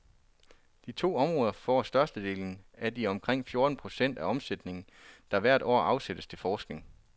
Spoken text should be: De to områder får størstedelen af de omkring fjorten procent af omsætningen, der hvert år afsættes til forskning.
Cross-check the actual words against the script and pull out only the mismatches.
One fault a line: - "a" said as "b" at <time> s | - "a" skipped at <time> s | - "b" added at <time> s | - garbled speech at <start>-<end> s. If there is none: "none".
none